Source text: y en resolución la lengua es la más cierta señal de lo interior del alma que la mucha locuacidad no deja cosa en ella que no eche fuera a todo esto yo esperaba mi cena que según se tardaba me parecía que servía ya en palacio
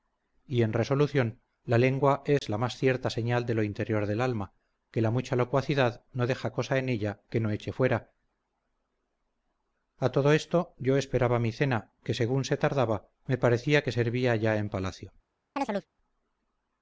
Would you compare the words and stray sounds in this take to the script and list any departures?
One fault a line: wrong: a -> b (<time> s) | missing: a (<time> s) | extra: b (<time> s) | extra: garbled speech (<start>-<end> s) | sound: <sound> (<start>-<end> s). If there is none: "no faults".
sound: dropout (2.4-2.4 s)
sound: chirp (15.6-15.9 s)